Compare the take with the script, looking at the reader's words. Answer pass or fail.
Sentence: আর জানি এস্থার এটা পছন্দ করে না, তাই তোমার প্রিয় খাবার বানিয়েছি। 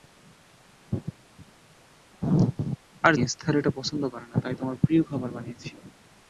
fail